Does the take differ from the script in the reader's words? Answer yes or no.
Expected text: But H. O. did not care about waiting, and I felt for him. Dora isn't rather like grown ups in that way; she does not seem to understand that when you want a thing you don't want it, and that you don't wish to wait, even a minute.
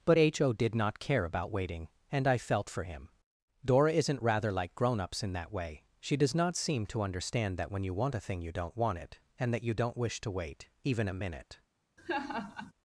no